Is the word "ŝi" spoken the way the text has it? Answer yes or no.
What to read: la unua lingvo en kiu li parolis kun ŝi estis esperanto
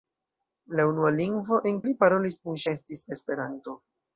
no